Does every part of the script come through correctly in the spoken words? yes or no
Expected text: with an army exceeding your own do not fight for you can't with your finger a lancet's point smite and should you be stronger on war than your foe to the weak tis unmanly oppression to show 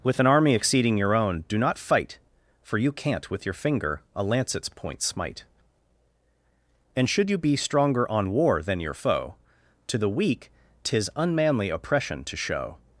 yes